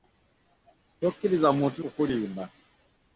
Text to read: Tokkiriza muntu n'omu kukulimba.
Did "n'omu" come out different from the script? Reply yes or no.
yes